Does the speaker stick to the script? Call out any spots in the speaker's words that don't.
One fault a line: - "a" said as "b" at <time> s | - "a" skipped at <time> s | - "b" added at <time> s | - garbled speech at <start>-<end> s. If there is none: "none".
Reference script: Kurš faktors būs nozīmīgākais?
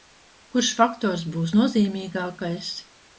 none